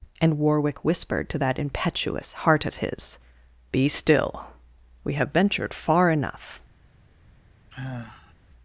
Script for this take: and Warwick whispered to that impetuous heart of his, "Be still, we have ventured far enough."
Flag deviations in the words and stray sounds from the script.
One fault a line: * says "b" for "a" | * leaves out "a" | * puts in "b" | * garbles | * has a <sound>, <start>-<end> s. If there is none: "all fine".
* has a sigh, 7.7-8.3 s